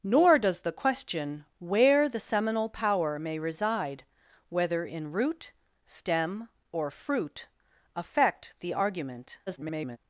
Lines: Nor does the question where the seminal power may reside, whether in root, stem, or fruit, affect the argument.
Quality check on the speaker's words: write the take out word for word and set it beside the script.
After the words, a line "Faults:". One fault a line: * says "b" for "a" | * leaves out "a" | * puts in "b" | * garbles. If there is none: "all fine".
Nor does the question where the seminal power may reside, whether in root, stem, or fruit, affect the argument. [garbled]
Faults:
* garbles